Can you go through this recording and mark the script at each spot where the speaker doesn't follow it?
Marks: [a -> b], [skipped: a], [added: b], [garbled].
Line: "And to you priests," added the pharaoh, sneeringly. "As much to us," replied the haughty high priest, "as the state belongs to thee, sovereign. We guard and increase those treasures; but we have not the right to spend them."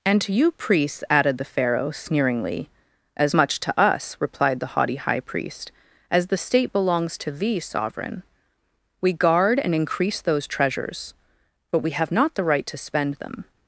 "And to you priests," added the pharaoh, sneeringly. "As much to us," replied the haughty high priest, "as the state belongs to thee, sovereign. We guard and increase those treasures; but we have not the right to spend them."